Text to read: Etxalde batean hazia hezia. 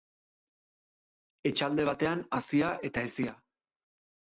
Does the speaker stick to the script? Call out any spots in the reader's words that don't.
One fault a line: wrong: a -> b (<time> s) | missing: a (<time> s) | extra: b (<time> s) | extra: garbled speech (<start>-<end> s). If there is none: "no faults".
extra: eta (2.9 s)